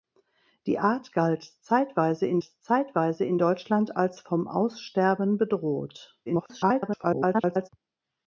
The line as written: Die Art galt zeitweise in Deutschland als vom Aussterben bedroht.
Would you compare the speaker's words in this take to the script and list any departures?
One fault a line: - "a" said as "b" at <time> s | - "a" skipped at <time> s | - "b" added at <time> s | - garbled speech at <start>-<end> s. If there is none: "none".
- "zeitweise in" added at 2.4 s
- garbled speech at 6.3-7.7 s